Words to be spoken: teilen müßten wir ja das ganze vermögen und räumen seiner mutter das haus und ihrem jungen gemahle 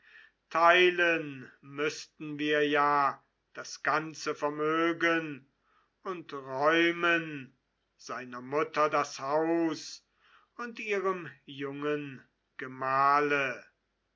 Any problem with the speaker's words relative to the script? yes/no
no